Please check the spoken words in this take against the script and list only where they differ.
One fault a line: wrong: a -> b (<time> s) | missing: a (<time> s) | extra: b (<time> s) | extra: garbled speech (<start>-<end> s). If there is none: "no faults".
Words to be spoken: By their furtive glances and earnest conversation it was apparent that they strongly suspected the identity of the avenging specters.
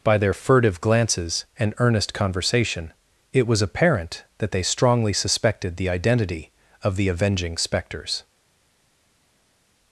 no faults